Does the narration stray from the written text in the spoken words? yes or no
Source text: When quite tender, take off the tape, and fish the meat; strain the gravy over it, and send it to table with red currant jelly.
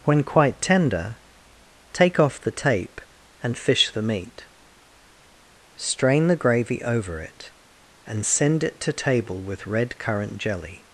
no